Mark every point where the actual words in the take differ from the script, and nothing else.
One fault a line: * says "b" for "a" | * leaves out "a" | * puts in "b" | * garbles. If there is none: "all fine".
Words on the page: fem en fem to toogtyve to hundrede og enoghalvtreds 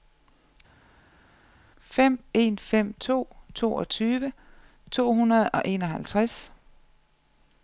all fine